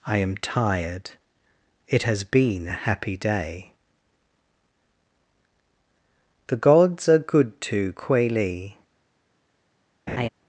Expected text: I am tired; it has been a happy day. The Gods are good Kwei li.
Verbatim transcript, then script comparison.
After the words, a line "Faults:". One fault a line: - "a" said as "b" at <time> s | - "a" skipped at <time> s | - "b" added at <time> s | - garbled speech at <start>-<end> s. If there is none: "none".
I am tired; it has been a happy day. The Gods are good to, Kwei li.
Faults:
- "to" added at 7.6 s